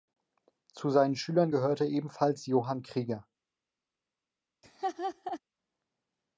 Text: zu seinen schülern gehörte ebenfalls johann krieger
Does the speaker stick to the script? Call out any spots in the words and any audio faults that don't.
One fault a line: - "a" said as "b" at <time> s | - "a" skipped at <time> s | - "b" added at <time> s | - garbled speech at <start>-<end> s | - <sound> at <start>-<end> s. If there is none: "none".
- laugh at 4.6-5.4 s